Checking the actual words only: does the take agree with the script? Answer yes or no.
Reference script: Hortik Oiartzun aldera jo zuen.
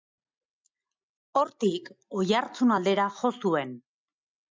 yes